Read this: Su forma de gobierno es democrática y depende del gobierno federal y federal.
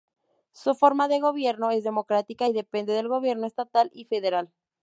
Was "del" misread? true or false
false